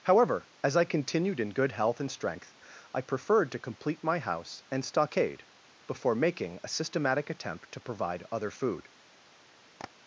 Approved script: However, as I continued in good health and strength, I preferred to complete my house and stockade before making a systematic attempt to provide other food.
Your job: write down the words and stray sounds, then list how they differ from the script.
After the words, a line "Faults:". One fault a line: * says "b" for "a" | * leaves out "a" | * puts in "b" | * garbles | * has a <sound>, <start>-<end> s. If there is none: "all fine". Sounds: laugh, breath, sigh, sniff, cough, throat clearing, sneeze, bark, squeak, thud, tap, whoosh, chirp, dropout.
However, as I continued in good health and strength, I preferred to complete my house and stockade before making a systematic attempt to provide other food.
Faults:
* has a tap, 9.8-9.9 s